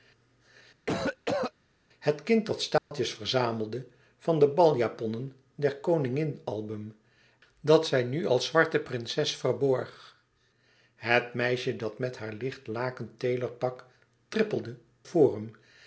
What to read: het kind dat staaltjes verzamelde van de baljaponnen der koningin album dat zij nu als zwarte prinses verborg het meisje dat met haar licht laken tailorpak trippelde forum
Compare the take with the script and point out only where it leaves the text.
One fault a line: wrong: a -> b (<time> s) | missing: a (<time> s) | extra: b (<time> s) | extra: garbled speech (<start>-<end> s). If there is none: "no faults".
no faults